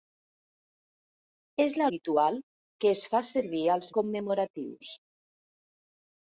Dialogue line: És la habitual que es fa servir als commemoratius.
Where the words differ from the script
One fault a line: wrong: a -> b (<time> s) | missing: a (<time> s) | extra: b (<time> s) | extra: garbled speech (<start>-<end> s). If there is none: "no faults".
no faults